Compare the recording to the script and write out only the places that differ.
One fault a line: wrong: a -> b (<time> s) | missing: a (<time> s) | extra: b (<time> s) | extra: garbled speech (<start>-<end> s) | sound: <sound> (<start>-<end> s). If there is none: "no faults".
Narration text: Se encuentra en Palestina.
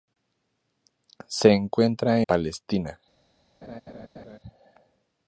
missing: en (2.2 s)
sound: laugh (3.6-4.4 s)